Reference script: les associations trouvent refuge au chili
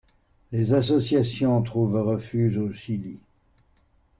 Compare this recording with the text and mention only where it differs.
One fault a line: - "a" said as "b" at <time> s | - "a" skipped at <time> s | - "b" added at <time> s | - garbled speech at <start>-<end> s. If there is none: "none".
none